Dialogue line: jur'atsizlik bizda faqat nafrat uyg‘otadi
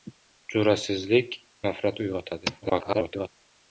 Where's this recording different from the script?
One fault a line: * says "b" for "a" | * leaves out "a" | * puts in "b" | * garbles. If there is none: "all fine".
* leaves out "bizda faqat"
* garbles